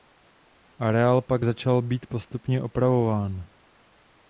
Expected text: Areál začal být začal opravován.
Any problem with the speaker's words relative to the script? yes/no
yes